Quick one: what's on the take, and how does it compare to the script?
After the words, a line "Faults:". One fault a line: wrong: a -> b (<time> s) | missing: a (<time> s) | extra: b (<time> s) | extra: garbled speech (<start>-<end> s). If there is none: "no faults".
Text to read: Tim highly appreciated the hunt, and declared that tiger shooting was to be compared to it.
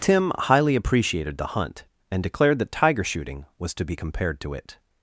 Tim highly appreciated the hunt, and declared that tiger shooting was to be compared to it.
Faults:
no faults